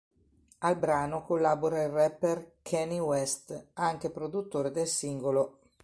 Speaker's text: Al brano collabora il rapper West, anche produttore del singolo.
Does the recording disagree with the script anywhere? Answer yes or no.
yes